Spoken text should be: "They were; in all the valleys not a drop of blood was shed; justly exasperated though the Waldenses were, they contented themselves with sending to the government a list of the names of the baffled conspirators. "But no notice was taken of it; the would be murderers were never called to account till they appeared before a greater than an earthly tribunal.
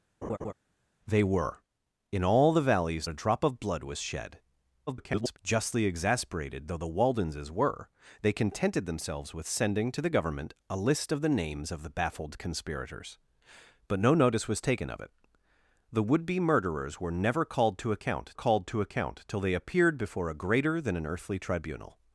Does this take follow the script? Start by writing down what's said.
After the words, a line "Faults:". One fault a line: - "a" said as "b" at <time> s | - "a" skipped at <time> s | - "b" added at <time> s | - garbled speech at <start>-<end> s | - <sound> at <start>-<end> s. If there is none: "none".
"They were; in all the valleys a drop of blood was shed; [garbled] justly exasperated though the Waldenses were, they contented themselves with sending to the government a list of the names of the baffled conspirators. "But no notice was taken of it; the would be murderers were never called to account called to account till they appeared before a greater than an earthly tribunal.
Faults:
- laugh at 0.2-0.5 s
- "not" skipped at 3.1 s
- garbled speech at 4.9-5.4 s
- "called to account" added at 18.3 s